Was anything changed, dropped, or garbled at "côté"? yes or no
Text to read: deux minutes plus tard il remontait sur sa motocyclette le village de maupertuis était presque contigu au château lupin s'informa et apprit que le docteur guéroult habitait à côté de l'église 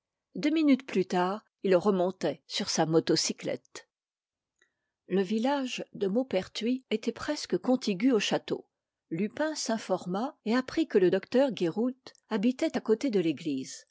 no